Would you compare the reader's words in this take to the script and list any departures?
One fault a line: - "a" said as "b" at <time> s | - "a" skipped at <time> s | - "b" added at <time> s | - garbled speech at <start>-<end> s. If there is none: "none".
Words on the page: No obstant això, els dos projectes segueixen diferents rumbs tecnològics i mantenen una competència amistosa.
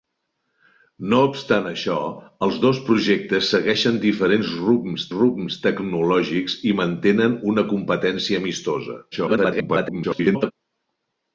- "rumbs" added at 5.2 s
- garbled speech at 9.1-10.5 s